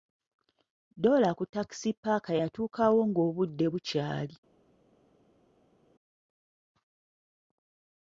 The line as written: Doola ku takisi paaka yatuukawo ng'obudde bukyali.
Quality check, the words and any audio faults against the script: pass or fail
pass